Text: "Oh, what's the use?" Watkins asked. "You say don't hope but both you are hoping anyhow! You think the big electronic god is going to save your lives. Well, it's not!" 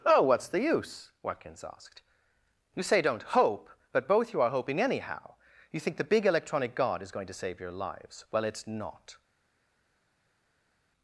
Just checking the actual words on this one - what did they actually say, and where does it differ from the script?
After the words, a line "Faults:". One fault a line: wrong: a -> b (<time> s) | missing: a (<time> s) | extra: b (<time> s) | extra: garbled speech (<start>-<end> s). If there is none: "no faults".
"Oh, what's the use?" Watkins asked. "You say don't hope but both you are hoping anyhow! You think the big electronic god is going to save your lives. Well, it's not!"
Faults:
no faults